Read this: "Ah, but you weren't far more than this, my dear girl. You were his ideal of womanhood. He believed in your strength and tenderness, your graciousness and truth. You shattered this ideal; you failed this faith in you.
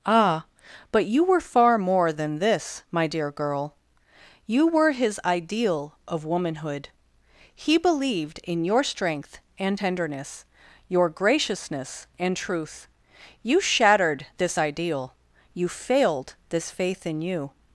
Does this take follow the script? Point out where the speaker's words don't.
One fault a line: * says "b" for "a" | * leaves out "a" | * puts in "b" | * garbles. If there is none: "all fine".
* says "were" for "weren't"